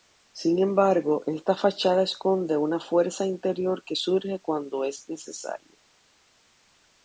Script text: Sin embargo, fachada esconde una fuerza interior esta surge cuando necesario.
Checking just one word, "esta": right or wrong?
wrong